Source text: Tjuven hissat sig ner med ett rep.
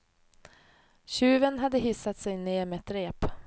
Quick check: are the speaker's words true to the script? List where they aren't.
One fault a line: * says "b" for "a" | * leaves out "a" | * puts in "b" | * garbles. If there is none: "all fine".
* puts in "hade"